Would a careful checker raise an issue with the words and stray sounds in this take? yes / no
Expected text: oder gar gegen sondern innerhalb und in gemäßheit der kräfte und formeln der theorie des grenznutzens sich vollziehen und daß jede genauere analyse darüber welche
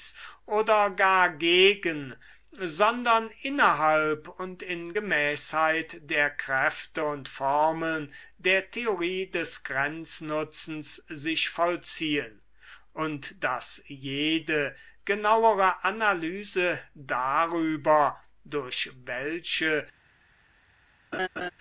yes